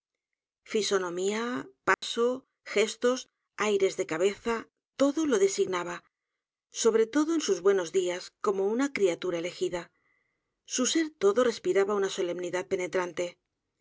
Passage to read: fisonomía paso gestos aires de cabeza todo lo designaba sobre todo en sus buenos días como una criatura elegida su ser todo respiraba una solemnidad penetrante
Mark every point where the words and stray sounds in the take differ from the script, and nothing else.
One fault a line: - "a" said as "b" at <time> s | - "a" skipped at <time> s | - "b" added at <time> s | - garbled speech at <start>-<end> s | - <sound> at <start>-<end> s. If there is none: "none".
- dropout at 1.9-2.0 s